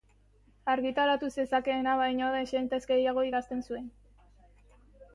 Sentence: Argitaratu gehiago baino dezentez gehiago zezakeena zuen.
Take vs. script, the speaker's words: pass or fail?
fail